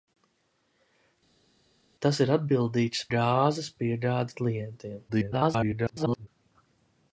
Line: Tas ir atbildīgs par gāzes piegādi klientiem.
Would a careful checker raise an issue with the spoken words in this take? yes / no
yes